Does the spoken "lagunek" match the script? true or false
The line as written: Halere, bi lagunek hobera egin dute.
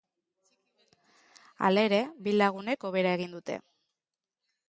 true